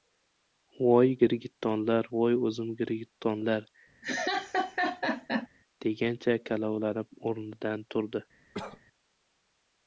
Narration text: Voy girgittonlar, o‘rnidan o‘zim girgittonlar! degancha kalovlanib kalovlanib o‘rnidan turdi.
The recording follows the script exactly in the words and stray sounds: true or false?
false